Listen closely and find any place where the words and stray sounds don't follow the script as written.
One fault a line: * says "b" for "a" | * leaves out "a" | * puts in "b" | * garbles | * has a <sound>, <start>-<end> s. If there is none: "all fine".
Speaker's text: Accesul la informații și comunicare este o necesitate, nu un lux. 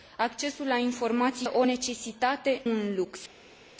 * leaves out "și comunicare este"
* leaves out "nu"